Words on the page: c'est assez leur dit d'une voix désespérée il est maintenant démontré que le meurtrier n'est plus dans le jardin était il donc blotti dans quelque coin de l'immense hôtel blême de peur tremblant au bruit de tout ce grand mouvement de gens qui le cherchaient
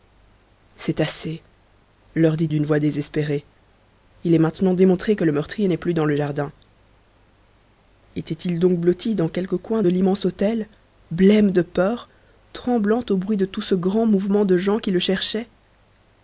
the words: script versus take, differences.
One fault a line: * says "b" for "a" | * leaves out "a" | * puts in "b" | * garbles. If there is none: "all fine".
all fine